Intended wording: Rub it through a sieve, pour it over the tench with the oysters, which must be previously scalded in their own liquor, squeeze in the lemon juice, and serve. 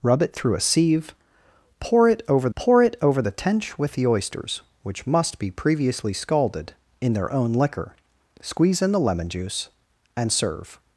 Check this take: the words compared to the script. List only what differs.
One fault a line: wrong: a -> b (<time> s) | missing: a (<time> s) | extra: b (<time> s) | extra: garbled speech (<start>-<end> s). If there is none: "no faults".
extra: pour it over (2.5 s)